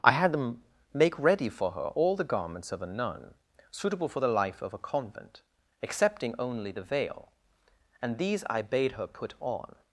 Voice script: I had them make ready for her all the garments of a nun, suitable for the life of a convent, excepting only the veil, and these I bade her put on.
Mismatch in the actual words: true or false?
false